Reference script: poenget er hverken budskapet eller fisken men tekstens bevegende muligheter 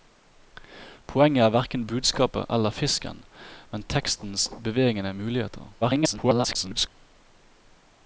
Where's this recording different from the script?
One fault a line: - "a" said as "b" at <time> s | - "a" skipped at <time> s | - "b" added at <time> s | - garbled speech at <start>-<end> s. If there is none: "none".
- garbled speech at 5.8-6.9 s